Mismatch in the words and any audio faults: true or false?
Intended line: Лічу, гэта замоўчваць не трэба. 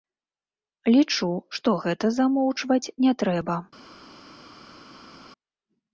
true